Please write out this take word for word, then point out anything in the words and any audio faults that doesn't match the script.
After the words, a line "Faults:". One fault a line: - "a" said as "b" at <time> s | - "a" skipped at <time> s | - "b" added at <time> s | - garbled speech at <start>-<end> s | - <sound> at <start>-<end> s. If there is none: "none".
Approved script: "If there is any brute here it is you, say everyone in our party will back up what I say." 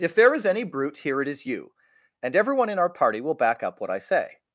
"If there is any brute here it is you, and everyone in our party will back up what I say."
Faults:
- "say" said as "and" at 2.2 s